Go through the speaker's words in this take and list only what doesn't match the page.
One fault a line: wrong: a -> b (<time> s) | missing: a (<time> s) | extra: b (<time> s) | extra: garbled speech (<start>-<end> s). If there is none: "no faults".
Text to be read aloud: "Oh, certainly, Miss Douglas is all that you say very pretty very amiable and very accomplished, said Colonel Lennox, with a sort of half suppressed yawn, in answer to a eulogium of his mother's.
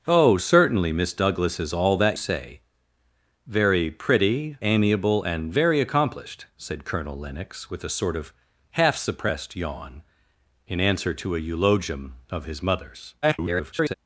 missing: you (2.2 s)
missing: very (4.6 s)
extra: garbled speech (13.2-13.9 s)